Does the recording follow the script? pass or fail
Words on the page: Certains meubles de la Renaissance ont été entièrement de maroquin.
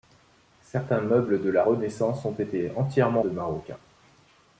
pass